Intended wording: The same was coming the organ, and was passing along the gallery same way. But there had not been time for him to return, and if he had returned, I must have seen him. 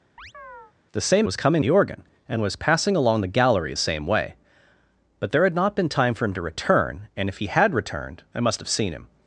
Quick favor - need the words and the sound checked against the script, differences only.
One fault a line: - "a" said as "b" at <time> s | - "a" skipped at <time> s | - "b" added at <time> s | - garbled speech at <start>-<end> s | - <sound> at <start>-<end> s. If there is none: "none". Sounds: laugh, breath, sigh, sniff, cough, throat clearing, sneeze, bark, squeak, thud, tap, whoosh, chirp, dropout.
- chirp at 0.2-0.7 s